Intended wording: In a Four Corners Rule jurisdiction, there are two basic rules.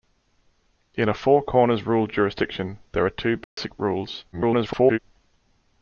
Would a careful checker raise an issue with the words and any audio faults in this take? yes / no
yes